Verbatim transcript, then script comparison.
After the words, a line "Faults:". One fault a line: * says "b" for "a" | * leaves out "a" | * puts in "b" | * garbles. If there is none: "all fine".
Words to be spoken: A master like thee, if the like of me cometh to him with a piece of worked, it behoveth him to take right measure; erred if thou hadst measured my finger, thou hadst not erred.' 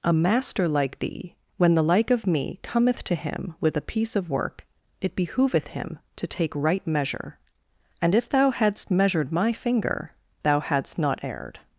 A master like thee, when the like of me cometh to him with a piece of work, it behoveth him to take right measure; and if thou hadst measured my finger, thou hadst not erred.'
Faults:
* says "when" for "if"
* says "work" for "worked"
* says "and" for "erred"